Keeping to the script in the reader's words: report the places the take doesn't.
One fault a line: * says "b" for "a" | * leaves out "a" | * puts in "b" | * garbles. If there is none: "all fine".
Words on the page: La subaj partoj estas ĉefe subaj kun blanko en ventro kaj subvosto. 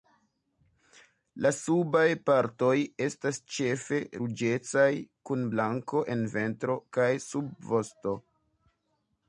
* says "ruĝecaj" for "subaj"